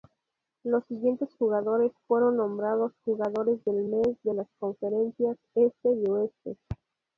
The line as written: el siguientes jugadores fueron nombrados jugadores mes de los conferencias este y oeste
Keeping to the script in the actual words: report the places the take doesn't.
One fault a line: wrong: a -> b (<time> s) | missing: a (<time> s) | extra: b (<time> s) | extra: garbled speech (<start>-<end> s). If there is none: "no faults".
wrong: el -> los (0.6 s)
extra: del (3.6 s)
wrong: los -> las (4.3 s)